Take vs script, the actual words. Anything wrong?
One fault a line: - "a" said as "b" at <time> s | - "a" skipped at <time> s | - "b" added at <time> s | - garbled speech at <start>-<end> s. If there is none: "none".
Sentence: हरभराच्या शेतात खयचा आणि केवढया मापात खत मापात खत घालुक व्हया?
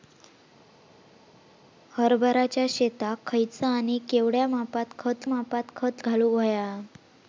none